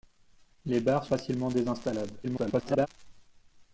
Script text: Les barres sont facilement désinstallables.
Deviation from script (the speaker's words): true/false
true